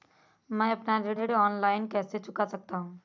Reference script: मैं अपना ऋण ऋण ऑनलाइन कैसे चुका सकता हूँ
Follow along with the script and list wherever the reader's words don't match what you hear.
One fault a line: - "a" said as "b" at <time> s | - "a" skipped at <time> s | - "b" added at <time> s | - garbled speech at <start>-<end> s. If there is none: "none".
none